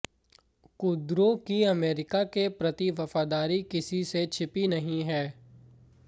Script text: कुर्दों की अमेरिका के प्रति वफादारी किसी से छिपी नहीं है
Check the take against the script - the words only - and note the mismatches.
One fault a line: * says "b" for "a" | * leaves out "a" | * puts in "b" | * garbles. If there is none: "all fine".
all fine